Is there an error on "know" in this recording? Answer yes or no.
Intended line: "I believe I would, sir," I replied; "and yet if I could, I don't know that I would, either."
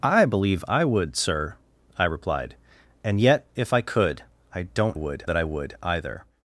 yes